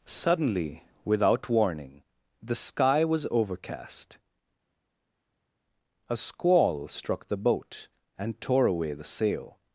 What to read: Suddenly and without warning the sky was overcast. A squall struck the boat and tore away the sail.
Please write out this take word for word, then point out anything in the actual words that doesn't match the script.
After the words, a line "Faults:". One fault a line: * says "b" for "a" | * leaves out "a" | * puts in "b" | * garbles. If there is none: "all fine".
Suddenly without warning the sky was overcast. A squall struck the boat and tore away the sail.
Faults:
* leaves out "and"